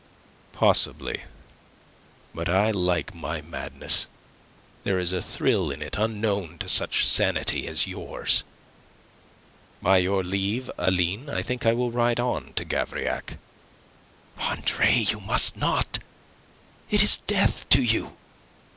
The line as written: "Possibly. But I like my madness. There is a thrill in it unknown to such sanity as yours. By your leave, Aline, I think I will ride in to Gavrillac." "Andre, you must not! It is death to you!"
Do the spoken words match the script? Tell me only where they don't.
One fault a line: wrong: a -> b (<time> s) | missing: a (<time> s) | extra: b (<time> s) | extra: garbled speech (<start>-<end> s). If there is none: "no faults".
wrong: in -> on (12.2 s)